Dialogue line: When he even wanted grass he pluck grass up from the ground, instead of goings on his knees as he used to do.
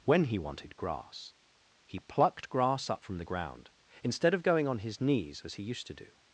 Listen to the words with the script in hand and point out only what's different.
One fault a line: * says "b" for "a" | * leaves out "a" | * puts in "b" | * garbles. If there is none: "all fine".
* leaves out "even"
* says "plucked" for "pluck"
* says "going" for "goings"